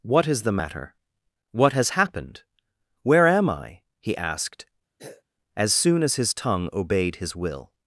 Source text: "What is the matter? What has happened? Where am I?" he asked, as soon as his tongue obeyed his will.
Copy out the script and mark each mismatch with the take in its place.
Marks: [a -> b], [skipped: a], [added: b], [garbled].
"What is the matter? What has happened? Where am I?" he asked, as soon as his tongue obeyed his will.